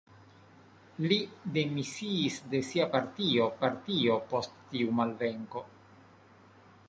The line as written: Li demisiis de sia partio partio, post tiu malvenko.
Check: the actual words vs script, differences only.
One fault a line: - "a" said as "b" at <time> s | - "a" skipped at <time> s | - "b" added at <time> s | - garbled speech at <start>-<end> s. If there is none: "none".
none